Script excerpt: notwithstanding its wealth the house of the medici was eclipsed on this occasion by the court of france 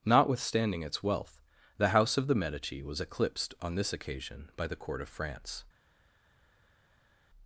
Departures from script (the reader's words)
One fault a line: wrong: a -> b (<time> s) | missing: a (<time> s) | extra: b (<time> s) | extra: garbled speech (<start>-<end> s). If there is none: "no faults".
no faults